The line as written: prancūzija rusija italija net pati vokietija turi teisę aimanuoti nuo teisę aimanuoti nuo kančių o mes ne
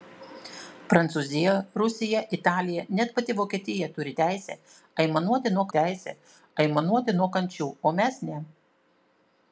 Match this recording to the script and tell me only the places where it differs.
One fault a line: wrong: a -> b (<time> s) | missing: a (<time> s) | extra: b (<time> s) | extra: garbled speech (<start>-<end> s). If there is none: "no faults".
no faults